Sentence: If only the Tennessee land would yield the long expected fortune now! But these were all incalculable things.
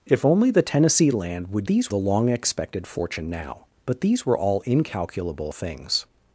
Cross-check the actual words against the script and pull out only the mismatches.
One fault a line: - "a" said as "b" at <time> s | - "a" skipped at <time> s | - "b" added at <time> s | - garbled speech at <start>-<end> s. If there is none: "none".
- "yield" said as "these" at 1.7 s